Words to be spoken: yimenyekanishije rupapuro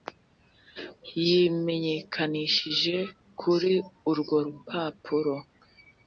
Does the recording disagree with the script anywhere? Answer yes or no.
yes